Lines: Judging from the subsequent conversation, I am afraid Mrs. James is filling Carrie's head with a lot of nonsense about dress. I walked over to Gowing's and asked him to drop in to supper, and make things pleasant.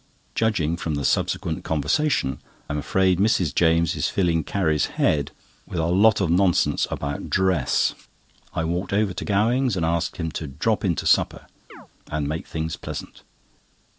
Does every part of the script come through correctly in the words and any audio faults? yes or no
no